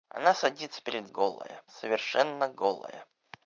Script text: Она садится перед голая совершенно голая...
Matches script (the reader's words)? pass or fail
pass